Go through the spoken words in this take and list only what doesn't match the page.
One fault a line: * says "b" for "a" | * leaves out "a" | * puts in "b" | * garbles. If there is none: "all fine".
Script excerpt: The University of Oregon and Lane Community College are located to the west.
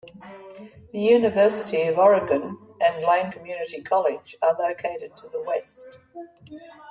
all fine